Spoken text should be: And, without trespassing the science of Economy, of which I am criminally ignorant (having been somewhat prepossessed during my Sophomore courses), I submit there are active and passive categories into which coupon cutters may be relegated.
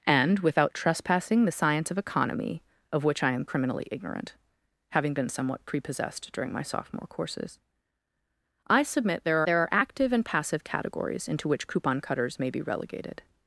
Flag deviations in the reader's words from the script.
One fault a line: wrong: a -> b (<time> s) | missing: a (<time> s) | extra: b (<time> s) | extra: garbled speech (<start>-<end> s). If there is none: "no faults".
extra: there (9.5 s)